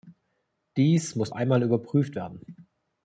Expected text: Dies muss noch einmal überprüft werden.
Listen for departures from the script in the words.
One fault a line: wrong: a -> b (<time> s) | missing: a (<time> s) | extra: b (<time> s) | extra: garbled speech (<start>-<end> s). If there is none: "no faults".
missing: noch (1.3 s)